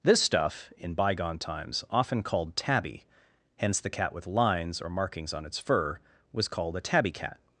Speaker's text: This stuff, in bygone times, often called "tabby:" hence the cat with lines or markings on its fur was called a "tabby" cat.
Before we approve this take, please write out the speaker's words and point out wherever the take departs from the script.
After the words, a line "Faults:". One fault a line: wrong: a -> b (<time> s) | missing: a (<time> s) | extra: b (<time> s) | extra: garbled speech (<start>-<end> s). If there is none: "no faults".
This stuff, in bygone times, often called "tabby:" hence the cat with lines or markings on its fur was called a "tabby" cat.
Faults:
no faults